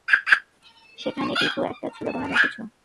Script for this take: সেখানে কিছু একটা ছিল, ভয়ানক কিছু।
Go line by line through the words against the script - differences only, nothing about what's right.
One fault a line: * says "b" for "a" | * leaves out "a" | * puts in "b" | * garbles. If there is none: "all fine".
all fine